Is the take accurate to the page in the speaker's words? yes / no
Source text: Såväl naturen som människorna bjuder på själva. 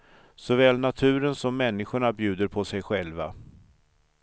no